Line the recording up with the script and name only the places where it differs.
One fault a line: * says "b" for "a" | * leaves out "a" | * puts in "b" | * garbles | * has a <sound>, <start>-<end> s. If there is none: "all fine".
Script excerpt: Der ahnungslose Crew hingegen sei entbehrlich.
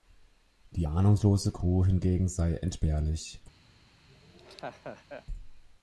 * says "Die" for "Der"
* has a laugh, 4.1-5.3 s